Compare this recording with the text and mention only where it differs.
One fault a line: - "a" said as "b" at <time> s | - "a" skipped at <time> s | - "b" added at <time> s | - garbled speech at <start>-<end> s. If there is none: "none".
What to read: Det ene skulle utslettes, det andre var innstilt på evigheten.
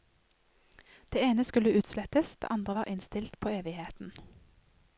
none